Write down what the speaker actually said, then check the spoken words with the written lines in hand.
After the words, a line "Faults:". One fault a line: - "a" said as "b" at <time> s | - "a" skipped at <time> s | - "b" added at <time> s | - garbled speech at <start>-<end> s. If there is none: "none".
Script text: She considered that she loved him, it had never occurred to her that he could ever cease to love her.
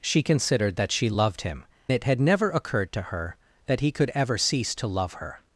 She considered that she loved him, it had never occurred to her that he could ever cease to love her.
Faults:
none